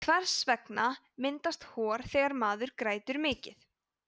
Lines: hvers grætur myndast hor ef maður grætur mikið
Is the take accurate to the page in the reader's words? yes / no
no